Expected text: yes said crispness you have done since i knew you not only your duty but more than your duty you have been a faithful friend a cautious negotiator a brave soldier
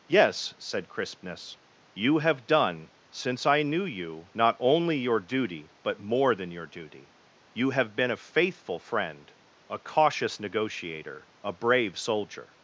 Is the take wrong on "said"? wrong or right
right